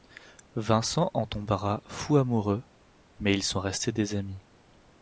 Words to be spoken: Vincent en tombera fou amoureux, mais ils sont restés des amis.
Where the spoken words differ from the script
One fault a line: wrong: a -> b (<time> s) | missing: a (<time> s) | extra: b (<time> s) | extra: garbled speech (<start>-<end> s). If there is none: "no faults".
no faults